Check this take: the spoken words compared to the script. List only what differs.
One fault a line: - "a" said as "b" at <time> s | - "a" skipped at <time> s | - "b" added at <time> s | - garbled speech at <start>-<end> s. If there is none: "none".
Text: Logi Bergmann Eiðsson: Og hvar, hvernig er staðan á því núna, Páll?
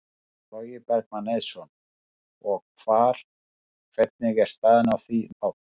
- "núna" skipped at 5.2 s